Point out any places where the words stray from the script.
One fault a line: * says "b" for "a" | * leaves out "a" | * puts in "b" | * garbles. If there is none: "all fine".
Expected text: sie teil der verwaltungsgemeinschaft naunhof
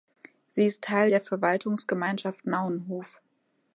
* puts in "ist"